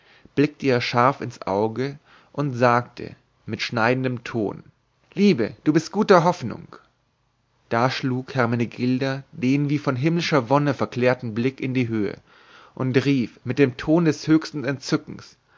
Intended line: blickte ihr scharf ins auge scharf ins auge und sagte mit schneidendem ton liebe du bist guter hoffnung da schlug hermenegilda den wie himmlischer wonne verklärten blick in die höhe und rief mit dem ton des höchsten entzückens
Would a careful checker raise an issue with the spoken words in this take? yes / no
yes